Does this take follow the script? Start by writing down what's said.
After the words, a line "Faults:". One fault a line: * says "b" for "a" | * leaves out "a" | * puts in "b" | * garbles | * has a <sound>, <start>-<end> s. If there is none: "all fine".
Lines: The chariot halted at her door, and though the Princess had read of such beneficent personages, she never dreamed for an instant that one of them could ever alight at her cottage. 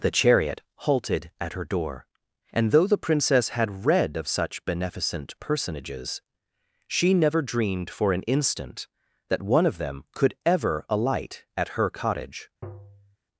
The chariot halted at her door, and though the Princess had read of such beneficent personages, she never dreamed for an instant that one of them could ever alight at her cottage.
Faults:
* has a tap, 12.6-13.2 s